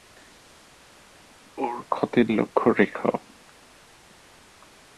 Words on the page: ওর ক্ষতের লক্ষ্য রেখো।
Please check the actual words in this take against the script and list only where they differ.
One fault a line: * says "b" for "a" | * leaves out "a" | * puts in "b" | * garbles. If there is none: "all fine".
all fine